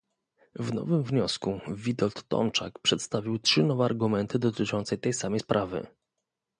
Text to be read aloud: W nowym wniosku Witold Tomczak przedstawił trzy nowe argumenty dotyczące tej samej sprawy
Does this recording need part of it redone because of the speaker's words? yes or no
no